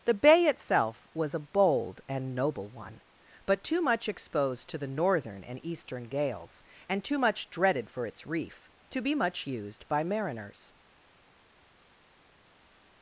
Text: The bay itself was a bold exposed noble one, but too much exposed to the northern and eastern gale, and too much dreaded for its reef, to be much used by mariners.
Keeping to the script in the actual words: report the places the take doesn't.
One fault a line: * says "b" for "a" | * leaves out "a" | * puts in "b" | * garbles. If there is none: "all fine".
* says "and" for "exposed"
* says "gales" for "gale"